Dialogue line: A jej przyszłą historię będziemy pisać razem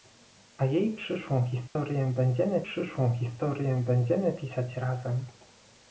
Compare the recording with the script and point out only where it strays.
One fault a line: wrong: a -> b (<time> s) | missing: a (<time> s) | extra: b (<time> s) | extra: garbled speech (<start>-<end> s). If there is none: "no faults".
extra: przyszłą historię będziemy (2.6 s)